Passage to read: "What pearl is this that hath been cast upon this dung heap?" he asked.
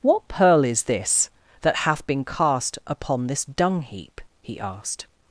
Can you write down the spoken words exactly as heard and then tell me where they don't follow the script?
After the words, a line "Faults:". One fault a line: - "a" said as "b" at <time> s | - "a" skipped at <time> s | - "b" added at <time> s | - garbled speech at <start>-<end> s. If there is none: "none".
"What pearl is this that hath been cast upon this dung heap?" he asked.
Faults:
none